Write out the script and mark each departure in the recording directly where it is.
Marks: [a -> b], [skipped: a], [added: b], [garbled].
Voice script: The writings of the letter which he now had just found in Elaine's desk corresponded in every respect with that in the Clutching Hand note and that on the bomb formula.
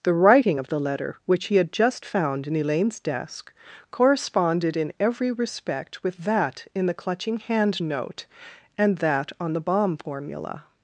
The [writings -> writing] of the letter which he [skipped: now] had just found in Elaine's desk corresponded in every respect with that in the Clutching Hand note and that on the bomb formula.